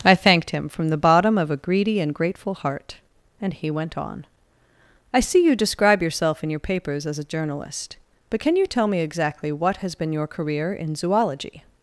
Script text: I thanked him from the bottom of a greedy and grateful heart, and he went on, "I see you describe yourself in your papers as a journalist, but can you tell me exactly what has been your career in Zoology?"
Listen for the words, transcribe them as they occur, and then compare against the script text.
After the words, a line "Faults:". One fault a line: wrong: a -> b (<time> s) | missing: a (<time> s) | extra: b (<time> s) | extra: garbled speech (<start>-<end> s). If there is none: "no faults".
I thanked him from the bottom of a greedy and grateful heart, and he went on, "I see you describe yourself in your papers as a journalist, but can you tell me exactly what has been your career in Zoology?"
Faults:
no faults